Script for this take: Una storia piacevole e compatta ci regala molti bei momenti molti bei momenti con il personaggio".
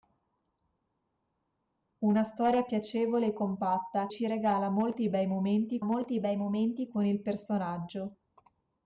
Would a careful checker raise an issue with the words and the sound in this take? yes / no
no